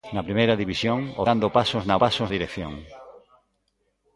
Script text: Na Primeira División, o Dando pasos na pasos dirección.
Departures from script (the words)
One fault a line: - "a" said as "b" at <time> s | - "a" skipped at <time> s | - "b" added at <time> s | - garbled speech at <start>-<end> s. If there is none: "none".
none